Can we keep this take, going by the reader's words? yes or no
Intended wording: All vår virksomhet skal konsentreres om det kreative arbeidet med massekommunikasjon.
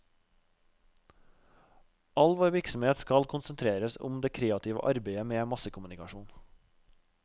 yes